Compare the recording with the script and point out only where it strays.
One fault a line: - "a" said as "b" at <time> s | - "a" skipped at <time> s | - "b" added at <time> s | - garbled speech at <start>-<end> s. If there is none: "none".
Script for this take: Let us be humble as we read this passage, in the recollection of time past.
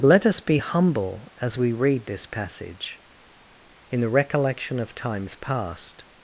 - "time" said as "times" at 5.0 s